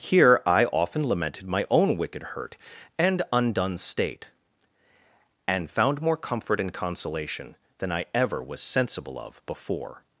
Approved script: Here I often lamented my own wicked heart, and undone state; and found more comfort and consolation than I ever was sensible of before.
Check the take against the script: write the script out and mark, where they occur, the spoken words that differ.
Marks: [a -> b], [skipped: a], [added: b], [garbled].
Here I often lamented my own wicked [heart, -> hurt] and undone state; and found more comfort and consolation than I ever was sensible of before.